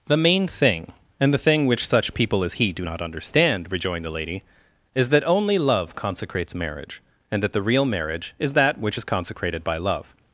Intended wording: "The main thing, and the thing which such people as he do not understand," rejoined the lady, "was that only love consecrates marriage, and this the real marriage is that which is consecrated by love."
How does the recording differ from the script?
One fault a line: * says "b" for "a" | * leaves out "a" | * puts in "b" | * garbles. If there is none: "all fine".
* says "is" for "was"
* says "that" for "this"